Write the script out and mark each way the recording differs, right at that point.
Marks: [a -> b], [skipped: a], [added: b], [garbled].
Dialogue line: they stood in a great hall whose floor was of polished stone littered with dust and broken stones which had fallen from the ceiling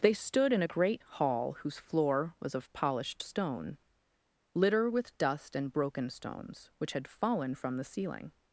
they stood in a great hall whose floor was of polished stone [littered -> litter] with dust and broken stones which had fallen from the ceiling